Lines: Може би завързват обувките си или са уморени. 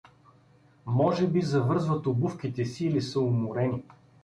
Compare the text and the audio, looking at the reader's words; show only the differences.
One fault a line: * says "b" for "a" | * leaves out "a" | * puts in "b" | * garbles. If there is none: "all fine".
all fine